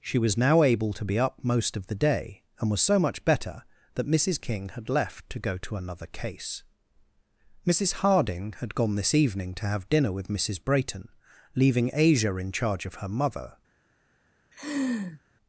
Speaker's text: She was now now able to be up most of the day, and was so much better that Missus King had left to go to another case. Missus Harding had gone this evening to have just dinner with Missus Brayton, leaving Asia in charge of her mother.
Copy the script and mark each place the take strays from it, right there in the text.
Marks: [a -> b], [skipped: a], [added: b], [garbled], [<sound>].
She was now [skipped: now] able to be up most of the day, and was so much better that Missus King had left to go to another case. Missus Harding had gone this evening to have [skipped: just] dinner with Missus Brayton, leaving Asia in charge of her mother. [laugh]